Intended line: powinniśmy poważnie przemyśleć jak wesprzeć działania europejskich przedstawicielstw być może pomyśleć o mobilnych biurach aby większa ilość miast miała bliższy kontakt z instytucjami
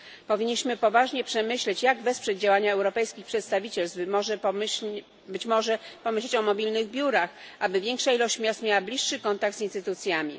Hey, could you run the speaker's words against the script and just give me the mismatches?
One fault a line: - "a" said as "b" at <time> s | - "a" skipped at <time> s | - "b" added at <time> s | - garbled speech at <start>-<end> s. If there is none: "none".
none